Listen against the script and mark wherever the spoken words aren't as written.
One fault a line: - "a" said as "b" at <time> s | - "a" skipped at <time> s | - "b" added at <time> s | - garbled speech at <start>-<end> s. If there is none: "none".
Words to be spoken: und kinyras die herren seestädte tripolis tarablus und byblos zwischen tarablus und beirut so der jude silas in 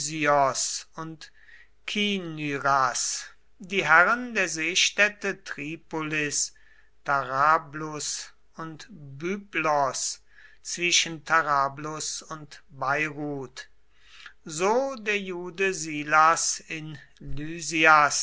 - "der" added at 4.3 s